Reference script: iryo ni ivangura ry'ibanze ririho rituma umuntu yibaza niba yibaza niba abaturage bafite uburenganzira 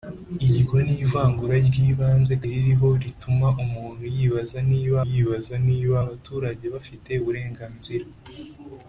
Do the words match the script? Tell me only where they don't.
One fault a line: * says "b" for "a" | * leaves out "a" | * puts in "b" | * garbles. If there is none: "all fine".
all fine